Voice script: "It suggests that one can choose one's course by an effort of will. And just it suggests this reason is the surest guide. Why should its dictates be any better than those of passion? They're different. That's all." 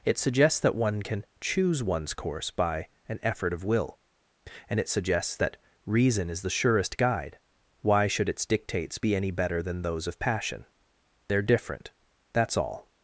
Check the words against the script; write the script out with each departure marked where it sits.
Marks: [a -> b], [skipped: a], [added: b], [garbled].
"It suggests that one can choose one's course by an effort of will. And [skipped: just] it suggests [this -> that] reason is the surest guide. Why should its dictates be any better than those of passion? They're different. That's all."